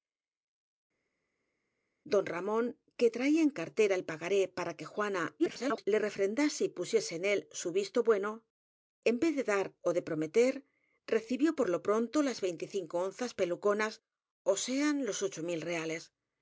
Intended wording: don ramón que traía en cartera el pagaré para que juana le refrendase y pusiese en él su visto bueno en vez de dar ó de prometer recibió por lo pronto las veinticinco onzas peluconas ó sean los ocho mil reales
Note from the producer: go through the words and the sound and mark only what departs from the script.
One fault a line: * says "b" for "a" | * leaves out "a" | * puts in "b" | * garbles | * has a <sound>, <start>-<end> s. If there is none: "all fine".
* garbles